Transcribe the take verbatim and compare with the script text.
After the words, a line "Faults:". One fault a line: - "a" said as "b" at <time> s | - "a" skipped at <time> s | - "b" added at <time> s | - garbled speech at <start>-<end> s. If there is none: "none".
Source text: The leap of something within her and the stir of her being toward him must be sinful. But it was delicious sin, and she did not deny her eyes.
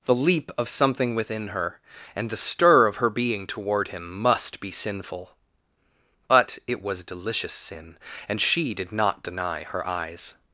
The leap of something within her and the stir of her being toward him must be sinful. But it was delicious sin, and she did not deny her eyes.
Faults:
none